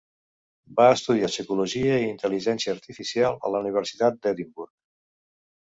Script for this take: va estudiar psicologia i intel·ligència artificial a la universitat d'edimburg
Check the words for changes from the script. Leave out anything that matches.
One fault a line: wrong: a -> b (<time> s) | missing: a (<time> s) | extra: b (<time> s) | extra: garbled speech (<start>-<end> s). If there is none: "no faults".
no faults